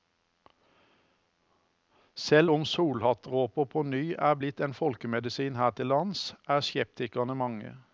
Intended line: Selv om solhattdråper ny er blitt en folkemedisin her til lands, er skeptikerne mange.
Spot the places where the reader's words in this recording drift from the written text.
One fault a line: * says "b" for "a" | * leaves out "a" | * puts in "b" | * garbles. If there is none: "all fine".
* puts in "på"